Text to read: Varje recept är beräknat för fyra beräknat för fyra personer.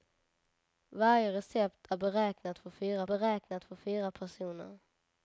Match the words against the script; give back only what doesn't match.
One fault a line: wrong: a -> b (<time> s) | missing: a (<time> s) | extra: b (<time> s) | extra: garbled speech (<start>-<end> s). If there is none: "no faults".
no faults